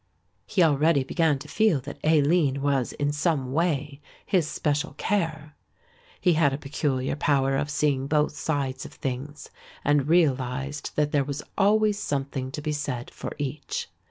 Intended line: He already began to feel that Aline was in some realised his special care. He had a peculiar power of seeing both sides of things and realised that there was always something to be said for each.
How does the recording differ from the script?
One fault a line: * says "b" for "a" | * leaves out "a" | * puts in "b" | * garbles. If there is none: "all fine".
* says "way" for "realised"